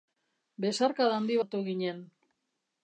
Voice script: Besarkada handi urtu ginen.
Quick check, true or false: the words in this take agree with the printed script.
true